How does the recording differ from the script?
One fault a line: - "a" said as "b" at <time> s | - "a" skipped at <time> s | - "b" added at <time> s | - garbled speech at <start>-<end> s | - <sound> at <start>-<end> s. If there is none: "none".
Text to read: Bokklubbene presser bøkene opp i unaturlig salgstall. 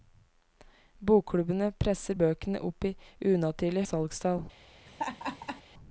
- laugh at 4.9-5.6 s